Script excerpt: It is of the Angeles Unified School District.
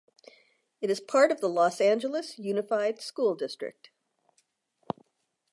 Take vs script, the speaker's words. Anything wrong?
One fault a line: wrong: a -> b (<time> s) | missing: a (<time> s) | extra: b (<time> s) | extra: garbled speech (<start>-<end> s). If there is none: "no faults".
extra: part (1.0 s)
extra: Los (1.5 s)